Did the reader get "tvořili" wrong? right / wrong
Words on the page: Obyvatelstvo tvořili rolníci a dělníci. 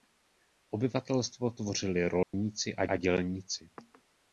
right